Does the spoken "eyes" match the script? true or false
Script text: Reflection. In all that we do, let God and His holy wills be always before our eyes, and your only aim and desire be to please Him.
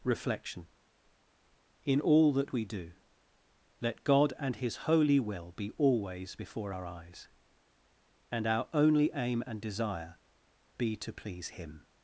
true